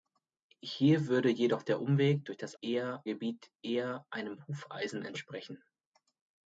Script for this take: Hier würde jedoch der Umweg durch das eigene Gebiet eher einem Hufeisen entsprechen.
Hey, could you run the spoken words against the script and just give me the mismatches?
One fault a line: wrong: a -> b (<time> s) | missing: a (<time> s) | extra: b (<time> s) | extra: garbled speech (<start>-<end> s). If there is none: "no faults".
wrong: eigene -> eher (2.6 s)